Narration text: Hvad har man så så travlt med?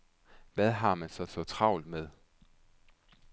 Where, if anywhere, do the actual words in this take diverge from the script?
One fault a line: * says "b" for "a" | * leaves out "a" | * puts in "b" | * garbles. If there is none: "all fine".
all fine